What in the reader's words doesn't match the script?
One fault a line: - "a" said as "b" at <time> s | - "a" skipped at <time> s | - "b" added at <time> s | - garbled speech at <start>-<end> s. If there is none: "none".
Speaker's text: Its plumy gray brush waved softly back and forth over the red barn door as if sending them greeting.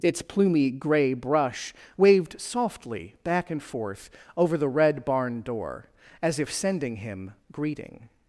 - "them" said as "him" at 7.0 s